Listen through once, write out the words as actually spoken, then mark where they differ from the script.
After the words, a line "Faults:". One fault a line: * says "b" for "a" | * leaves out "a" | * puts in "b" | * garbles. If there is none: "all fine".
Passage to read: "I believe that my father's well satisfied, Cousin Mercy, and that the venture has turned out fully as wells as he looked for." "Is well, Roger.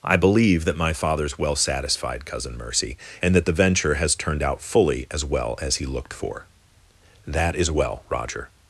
"I believe that my father's well satisfied, Cousin Mercy, and that the venture has turned out fully as well as he looked for." "That is well, Roger.
Faults:
* says "well" for "wells"
* puts in "That"